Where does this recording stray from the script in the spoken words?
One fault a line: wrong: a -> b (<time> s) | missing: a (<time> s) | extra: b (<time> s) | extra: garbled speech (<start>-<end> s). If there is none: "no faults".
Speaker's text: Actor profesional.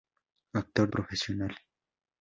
no faults